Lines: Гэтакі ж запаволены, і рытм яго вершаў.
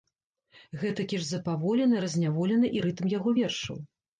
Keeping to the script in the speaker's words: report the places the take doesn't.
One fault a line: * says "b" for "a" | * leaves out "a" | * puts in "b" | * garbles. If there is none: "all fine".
* puts in "разняволены"